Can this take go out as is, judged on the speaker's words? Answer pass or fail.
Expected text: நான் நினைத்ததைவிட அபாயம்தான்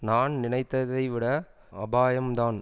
pass